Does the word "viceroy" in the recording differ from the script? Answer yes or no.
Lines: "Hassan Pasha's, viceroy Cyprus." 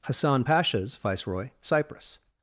no